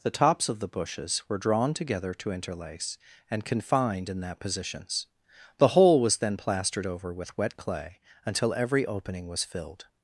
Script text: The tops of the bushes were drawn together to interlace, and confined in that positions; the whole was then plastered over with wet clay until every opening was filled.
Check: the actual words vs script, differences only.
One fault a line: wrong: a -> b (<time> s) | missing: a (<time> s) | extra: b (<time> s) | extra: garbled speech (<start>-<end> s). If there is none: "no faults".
no faults